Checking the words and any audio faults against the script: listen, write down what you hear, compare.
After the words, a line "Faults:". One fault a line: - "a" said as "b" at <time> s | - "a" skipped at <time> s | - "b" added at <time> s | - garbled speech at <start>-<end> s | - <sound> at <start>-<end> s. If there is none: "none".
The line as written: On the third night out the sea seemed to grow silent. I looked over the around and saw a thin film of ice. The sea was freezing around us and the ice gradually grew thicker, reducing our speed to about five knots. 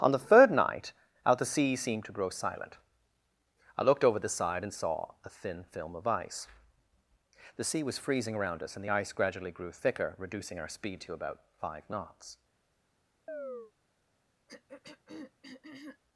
On the third night out the sea seemed to grow silent. I looked over the side and saw a thin film of ice. The sea was freezing around us and the ice gradually grew thicker, reducing our speed to about five knots.
Faults:
- "around" said as "side" at 4.3 s
- chirp at 13.3-13.7 s
- throat clearing at 14.5-16.0 s